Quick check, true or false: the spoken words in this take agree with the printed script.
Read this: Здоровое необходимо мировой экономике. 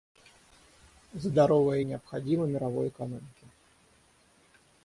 true